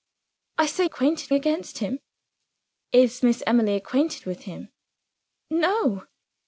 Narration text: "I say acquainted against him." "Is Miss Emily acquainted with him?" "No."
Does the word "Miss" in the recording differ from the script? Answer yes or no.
no